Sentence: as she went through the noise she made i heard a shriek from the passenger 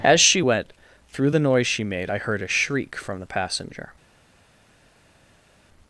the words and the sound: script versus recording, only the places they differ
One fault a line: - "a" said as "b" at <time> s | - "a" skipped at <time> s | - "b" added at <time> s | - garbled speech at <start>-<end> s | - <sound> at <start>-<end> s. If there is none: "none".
none